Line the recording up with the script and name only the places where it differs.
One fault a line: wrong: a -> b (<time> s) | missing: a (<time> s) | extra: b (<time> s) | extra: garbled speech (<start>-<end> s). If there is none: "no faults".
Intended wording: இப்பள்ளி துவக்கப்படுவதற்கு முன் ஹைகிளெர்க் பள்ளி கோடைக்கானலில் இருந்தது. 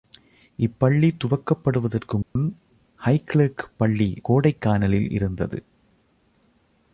no faults